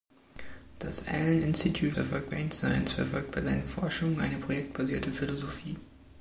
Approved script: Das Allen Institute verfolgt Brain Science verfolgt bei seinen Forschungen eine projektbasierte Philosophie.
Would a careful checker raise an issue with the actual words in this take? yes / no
no